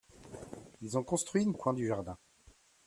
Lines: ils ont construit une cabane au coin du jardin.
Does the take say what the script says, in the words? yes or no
no